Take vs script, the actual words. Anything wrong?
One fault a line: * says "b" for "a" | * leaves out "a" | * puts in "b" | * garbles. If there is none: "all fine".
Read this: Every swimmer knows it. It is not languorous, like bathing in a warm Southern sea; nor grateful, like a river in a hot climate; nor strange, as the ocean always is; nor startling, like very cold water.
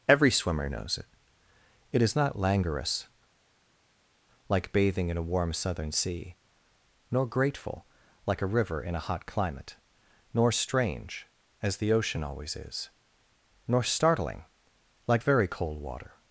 all fine